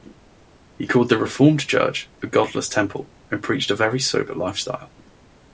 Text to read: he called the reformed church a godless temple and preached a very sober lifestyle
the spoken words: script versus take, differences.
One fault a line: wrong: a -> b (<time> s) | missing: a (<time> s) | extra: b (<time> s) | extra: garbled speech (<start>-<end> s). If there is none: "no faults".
no faults